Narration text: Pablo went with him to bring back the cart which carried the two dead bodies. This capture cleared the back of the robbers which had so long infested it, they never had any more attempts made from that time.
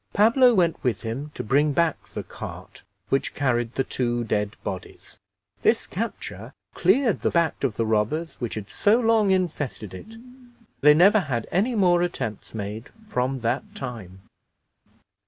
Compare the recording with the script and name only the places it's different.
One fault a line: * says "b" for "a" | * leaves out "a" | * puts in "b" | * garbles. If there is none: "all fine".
all fine